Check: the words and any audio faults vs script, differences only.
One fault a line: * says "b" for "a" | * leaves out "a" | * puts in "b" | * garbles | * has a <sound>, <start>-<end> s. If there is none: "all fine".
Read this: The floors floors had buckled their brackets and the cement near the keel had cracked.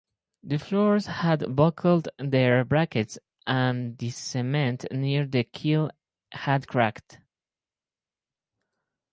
* leaves out "floors"